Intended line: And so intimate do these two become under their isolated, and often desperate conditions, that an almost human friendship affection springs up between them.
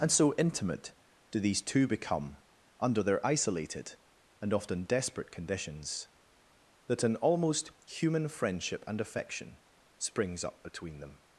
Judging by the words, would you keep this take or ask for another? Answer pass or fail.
fail